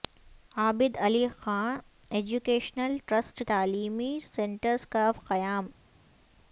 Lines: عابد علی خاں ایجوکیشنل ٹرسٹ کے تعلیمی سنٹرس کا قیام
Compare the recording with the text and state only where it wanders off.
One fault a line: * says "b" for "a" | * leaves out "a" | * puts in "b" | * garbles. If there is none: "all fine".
* leaves out "کے"